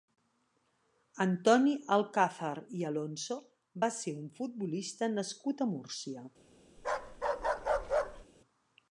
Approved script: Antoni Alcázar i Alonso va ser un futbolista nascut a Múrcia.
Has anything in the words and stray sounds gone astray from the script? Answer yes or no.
yes